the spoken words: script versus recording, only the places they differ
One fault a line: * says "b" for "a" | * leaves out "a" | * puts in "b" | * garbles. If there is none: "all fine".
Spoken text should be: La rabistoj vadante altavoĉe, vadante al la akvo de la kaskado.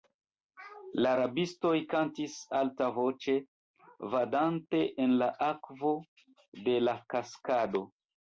* says "kantis" for "vadante"
* says "en" for "al"